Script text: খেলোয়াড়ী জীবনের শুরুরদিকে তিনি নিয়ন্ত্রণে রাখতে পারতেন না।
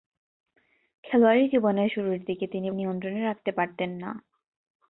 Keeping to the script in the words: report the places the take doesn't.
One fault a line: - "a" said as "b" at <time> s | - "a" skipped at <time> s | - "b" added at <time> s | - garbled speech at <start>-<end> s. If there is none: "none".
none